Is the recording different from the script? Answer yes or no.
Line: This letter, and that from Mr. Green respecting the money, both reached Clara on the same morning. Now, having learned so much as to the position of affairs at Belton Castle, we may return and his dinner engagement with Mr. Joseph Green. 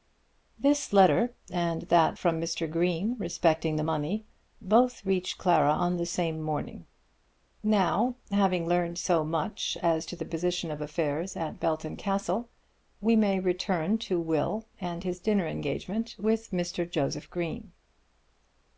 yes